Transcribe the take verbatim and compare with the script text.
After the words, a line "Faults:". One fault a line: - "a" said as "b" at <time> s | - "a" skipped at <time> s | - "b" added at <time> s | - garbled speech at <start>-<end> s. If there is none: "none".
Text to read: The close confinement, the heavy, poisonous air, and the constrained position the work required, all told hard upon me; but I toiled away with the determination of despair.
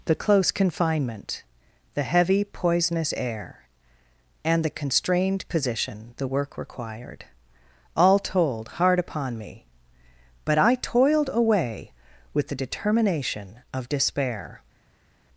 The close confinement, the heavy, poisonous air, and the constrained position the work required, all told hard upon me; but I toiled away with the determination of despair.
Faults:
none